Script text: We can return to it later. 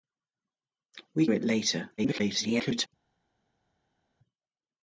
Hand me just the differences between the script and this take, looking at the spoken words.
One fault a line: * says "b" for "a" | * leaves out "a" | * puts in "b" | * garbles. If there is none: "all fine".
* leaves out "can return to"
* garbles